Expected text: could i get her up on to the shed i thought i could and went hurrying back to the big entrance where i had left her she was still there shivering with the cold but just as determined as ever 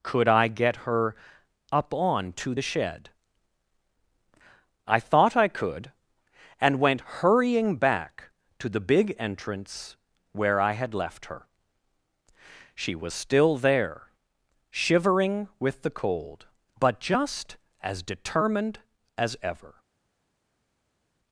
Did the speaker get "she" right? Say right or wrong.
right